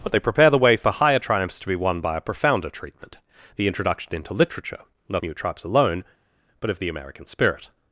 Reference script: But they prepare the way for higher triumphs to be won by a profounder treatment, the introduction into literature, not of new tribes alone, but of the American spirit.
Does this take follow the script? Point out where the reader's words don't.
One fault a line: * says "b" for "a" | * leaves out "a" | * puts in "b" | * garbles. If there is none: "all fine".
* leaves out "of"